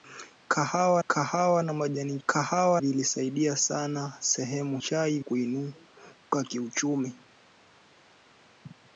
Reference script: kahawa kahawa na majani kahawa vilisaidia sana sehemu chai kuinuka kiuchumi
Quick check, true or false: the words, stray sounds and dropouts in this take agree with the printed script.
true